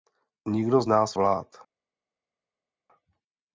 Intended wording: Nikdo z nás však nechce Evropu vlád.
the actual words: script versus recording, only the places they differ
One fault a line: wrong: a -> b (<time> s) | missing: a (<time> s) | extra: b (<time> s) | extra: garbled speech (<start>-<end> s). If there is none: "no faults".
missing: však nechce Evropu (1.1 s)